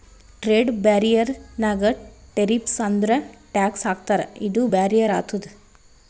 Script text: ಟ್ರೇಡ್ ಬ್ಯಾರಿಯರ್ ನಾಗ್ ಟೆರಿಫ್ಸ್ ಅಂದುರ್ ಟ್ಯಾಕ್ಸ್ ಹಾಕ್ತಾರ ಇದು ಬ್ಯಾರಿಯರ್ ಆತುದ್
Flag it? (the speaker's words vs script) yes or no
no